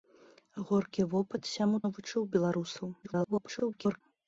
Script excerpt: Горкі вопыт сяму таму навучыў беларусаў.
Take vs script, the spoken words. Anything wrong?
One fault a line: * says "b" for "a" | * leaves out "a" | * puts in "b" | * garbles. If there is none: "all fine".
* leaves out "таму"
* garbles